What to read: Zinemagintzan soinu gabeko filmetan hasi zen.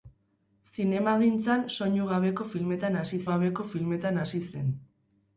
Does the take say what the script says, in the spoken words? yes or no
no